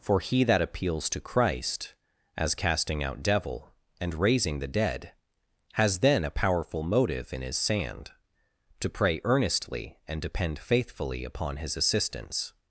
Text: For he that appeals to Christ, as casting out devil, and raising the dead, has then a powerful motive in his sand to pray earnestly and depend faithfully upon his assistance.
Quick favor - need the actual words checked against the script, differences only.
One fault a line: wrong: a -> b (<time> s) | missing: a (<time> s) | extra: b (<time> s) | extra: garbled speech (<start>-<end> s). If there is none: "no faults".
no faults